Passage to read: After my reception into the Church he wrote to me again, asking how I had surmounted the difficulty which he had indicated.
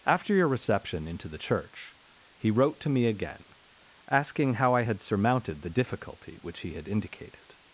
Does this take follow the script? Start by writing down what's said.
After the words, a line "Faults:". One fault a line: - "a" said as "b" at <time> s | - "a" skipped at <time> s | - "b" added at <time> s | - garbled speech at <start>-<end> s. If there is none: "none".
After your reception into the Church he wrote to me again, asking how I had surmounted the difficulty which he had indicated.
Faults:
- "my" said as "your" at 0.3 s